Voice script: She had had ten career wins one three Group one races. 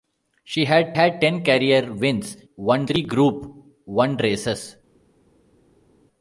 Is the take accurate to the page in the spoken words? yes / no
yes